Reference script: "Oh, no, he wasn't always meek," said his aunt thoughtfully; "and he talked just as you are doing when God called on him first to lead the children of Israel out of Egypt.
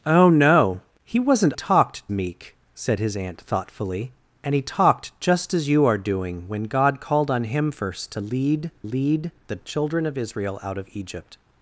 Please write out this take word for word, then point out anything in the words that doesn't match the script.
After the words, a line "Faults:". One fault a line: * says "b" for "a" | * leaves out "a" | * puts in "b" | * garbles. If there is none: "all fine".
"Oh, no, he wasn't talked meek," said his aunt thoughtfully; "and he talked just as you are doing when God called on him first to lead lead the children of Israel out of Egypt.
Faults:
* says "talked" for "always"
* puts in "lead"